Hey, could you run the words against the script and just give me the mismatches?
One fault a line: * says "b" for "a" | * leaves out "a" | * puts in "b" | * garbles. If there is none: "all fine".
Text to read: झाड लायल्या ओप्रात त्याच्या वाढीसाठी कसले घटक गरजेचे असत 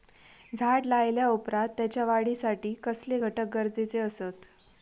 all fine